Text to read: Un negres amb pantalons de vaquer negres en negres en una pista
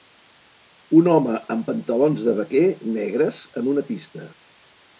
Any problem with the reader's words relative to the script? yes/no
yes